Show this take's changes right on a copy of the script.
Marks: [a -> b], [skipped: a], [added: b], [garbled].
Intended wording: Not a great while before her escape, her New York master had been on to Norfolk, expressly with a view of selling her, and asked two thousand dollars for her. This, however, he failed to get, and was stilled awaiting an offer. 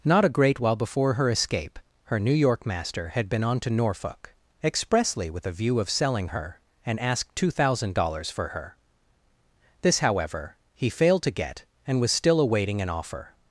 Not a great while before her escape, her New York master had been on to Norfolk, expressly with a view of selling her, and asked two thousand dollars for her. This, however, he failed to get, and was [stilled -> still] awaiting an offer.